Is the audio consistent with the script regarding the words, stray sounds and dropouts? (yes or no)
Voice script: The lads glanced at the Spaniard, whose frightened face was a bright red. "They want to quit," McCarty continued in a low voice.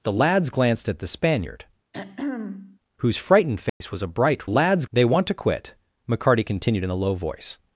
no